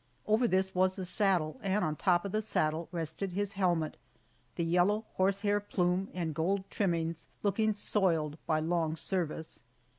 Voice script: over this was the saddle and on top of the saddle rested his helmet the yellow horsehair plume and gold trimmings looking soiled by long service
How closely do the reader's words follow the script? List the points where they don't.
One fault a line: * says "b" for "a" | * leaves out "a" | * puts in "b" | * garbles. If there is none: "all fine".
all fine